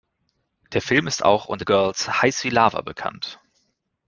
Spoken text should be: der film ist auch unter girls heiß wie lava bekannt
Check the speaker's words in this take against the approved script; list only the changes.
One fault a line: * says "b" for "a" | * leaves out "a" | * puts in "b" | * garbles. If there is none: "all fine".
all fine